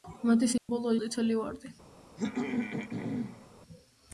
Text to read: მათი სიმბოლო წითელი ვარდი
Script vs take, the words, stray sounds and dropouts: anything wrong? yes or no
yes